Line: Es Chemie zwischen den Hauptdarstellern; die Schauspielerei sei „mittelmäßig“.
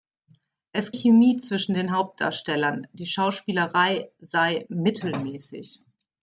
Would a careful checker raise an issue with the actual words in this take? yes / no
no